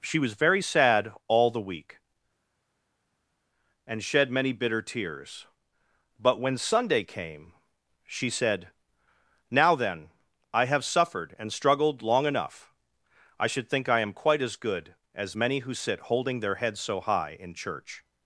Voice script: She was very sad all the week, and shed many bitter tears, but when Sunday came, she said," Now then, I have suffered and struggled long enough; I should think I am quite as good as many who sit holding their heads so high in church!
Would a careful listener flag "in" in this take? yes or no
no